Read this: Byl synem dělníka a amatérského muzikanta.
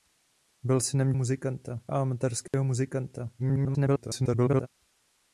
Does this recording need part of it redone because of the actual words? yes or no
yes